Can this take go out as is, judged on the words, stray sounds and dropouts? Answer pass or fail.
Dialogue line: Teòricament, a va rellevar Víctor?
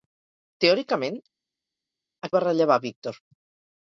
pass